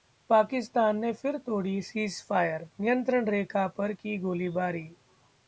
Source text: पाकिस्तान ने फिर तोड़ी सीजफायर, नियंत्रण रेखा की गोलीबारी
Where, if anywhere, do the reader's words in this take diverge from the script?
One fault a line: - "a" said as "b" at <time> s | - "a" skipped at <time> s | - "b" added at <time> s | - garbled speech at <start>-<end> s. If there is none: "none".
- "पर" added at 3.7 s